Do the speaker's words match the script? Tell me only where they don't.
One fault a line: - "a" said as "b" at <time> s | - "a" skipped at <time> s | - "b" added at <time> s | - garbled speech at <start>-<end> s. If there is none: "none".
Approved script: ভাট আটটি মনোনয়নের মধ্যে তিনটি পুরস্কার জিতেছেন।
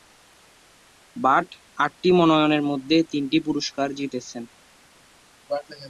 none